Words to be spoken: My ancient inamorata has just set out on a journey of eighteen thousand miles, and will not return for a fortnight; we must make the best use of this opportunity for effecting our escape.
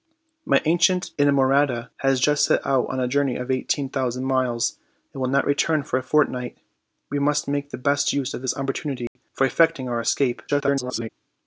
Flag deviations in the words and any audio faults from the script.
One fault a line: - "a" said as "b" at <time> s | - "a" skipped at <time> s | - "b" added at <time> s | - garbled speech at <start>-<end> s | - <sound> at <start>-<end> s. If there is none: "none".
- dropout at 9.1-9.2 s
- garbled speech at 10.5-11.1 s